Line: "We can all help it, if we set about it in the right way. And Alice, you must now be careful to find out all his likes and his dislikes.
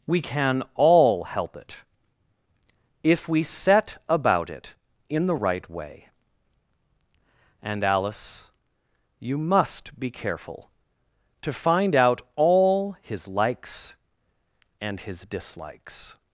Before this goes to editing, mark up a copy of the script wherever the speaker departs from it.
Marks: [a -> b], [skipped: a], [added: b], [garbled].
"We can all help it, if we set about it in the right way. And Alice, you must [skipped: now] be careful to find out all his likes and his dislikes.